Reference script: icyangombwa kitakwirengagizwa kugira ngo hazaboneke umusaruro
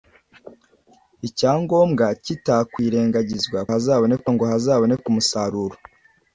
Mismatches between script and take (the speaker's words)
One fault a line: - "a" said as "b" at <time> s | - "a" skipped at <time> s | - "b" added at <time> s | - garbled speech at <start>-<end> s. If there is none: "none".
- "kugira" said as "hazaboneke" at 3.7 s